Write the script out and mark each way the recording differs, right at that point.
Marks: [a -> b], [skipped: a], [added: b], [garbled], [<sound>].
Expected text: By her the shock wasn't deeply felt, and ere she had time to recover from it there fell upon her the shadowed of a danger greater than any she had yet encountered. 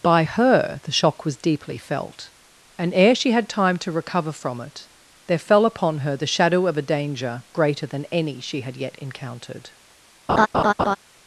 By her the shock [wasn't -> was] deeply felt, and ere she had time to recover from it there fell upon her the [shadowed -> shadow] of a danger greater than any she had yet encountered. [laugh]